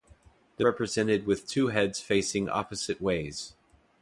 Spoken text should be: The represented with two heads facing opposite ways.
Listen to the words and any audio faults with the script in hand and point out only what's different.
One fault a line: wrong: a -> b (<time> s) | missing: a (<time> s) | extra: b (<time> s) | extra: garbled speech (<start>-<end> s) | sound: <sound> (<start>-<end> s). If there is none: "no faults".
no faults